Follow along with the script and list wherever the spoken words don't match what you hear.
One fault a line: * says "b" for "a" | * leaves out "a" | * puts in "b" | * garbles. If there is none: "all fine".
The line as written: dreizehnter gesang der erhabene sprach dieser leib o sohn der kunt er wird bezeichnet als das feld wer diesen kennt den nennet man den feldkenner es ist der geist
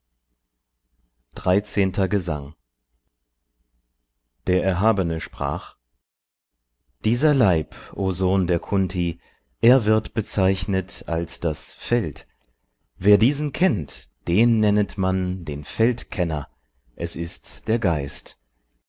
all fine